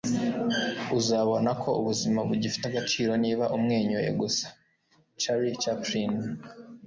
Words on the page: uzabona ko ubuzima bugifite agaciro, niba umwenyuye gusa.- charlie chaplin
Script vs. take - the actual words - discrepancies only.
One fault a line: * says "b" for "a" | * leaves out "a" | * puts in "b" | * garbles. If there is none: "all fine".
all fine